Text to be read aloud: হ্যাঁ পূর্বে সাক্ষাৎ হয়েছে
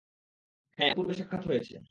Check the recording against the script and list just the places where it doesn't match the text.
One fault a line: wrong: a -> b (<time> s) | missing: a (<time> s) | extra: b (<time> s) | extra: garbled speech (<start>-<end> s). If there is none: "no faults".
no faults